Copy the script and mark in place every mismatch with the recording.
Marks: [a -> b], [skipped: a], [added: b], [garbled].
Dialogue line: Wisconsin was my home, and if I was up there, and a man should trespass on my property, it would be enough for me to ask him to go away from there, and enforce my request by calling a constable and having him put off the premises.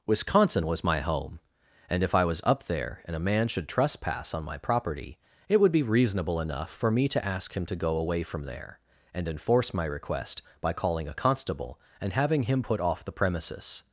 Wisconsin was my home, and if I was up there, and a man should trespass on my property, it would be [added: reasonable] enough for me to ask him to go away from there, and enforce my request by calling a constable and having him put off the premises.